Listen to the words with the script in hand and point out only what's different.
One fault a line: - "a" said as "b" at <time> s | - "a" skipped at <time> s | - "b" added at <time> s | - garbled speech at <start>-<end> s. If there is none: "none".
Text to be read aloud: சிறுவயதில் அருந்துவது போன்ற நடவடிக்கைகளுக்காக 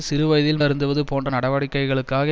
none